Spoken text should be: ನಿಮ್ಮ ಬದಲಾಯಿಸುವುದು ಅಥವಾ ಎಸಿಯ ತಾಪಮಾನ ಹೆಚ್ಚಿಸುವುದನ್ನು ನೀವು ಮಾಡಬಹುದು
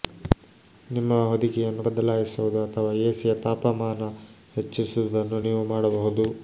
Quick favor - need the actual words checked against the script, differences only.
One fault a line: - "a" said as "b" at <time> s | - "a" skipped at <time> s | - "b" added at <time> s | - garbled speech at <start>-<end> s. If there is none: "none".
- "ಹೊದಿಕೆಯನ್ನು" added at 1.3 s